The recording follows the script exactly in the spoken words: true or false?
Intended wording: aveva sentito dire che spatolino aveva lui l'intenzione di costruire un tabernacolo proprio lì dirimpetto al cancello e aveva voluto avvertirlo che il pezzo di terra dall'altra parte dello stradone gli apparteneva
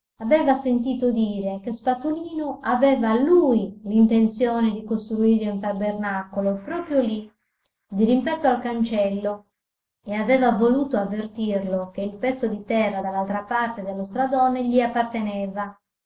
true